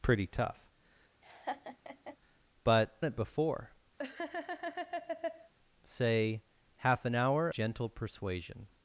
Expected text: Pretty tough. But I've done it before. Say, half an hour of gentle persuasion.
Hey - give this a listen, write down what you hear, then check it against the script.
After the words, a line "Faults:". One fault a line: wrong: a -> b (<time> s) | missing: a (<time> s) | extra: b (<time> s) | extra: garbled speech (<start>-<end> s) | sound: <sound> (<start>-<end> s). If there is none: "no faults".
Pretty tough. But It before. Say, half an hour gentle persuasion.
Faults:
sound: laugh (1.2-2.2 s)
missing: I've done (3.0 s)
sound: laugh (4.0-5.5 s)
missing: of (7.5 s)